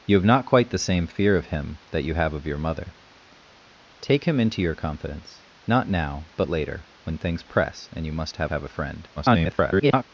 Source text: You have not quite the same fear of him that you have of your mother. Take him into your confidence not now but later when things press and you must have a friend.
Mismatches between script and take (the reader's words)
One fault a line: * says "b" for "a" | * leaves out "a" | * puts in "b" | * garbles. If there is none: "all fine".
* puts in "have"
* garbles